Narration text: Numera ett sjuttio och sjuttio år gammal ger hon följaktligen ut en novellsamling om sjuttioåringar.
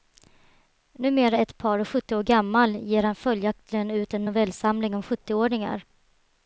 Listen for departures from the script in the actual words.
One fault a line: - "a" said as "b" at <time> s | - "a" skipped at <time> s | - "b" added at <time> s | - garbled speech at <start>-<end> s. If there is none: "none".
- "sjuttio" said as "par" at 1.6 s
- "hon" said as "han" at 3.0 s